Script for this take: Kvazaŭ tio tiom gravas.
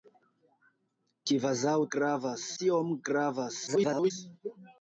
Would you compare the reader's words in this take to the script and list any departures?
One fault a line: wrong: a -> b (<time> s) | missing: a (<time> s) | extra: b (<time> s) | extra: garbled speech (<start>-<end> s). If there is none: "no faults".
wrong: tio -> gravas (2.0 s)
extra: garbled speech (3.7-4.1 s)